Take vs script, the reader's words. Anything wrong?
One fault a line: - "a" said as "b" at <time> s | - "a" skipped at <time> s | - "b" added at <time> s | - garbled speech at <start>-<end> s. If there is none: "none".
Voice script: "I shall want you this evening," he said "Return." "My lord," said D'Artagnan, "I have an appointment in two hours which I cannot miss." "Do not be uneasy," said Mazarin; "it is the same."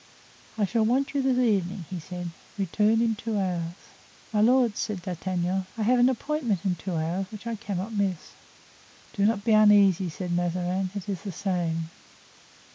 - "in two hours" added at 3.0 s